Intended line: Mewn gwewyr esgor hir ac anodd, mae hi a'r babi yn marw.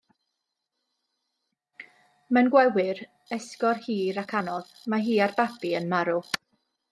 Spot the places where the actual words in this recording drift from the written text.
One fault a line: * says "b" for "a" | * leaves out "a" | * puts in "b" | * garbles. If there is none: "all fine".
all fine